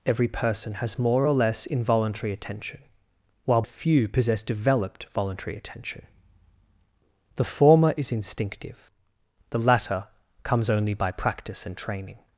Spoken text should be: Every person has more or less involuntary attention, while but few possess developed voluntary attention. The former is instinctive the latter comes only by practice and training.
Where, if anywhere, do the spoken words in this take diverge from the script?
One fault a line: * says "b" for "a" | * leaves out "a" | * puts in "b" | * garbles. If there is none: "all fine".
* leaves out "but"